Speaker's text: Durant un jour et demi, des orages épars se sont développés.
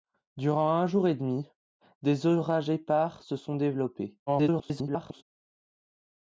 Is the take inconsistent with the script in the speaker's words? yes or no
yes